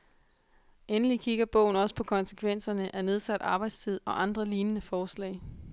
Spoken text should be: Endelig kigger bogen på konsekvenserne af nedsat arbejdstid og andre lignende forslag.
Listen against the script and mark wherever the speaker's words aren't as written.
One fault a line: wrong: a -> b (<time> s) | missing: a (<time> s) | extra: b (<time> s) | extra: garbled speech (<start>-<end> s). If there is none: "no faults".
extra: også (1.7 s)